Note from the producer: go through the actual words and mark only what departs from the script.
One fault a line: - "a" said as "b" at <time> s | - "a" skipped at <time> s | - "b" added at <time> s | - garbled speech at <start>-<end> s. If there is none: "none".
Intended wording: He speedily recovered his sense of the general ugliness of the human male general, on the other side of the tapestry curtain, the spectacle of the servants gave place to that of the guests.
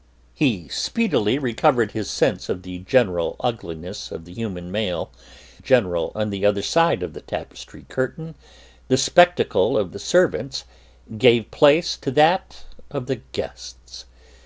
none